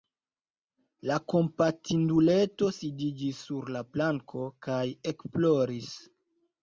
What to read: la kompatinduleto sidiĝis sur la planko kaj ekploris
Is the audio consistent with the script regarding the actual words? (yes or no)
yes